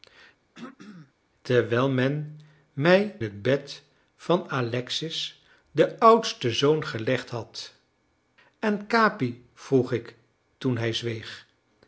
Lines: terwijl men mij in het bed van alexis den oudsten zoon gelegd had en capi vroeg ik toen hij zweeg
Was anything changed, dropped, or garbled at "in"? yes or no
yes